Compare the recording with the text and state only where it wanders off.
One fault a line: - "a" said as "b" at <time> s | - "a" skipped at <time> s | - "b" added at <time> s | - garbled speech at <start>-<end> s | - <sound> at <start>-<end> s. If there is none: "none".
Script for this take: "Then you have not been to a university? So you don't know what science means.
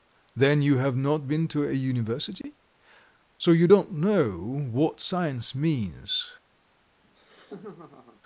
- dropout at 2.4-2.4 s
- laugh at 7.0-8.2 s